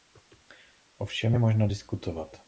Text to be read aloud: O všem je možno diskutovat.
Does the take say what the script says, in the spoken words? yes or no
yes